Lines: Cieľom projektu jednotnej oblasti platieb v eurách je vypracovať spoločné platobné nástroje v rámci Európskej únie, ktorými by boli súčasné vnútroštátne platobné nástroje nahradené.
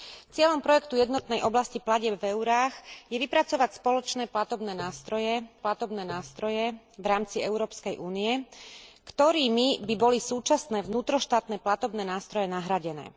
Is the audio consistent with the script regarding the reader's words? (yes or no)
no